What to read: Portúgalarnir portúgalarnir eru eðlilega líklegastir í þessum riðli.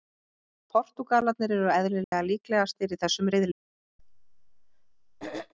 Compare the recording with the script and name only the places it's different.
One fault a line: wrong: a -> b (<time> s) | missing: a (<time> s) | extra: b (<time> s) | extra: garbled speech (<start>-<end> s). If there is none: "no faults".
missing: portúgalarnir (1.5 s)